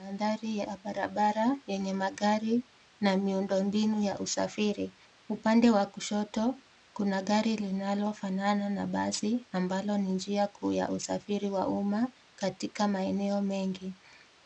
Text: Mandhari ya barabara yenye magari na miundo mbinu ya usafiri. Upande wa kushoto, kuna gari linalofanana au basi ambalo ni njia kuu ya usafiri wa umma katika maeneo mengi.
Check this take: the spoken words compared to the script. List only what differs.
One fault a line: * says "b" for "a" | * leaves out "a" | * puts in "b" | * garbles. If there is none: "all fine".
* says "na" for "au"